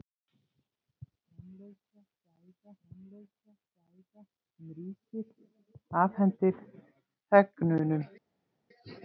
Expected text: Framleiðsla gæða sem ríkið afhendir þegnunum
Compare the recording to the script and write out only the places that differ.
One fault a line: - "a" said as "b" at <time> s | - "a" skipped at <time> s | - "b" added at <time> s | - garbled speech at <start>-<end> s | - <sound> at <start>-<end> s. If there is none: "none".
- "framleiðsla gæða" added at 2.9 s